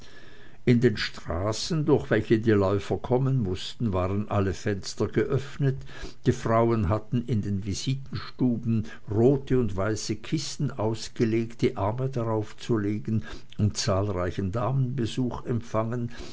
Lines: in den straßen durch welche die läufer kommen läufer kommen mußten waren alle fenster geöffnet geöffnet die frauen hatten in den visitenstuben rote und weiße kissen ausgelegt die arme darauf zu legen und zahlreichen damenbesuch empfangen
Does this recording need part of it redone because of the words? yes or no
yes